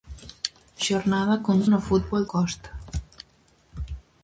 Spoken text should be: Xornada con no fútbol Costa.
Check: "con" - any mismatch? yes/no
no